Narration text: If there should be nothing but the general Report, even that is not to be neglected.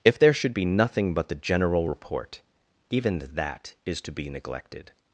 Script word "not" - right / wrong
wrong